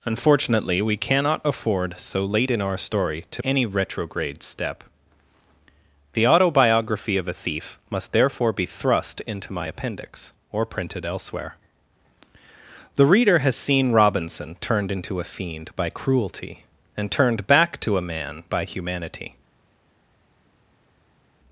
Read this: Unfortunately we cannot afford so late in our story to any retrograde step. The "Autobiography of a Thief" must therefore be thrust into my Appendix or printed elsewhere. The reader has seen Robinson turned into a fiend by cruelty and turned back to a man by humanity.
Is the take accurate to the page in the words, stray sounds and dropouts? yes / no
yes